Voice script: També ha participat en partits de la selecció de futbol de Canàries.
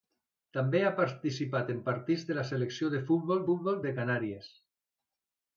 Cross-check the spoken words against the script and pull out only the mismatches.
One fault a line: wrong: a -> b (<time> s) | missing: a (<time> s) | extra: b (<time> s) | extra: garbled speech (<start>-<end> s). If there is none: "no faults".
extra: futbol (3.5 s)